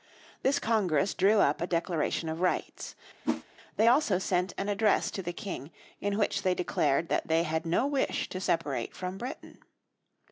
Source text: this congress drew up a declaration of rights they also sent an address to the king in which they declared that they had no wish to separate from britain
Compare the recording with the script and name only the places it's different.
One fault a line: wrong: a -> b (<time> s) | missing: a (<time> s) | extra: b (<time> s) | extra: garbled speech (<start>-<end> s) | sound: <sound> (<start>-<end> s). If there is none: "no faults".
sound: whoosh (3.2-3.4 s)